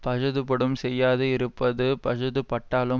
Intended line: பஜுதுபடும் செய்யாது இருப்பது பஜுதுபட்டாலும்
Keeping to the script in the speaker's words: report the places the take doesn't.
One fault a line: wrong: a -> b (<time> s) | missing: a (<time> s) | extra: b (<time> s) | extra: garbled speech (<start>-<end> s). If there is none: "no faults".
no faults